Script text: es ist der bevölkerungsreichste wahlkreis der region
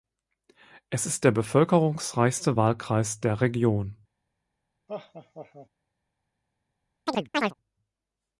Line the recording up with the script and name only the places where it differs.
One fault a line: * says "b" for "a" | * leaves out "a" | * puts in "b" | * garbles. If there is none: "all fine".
all fine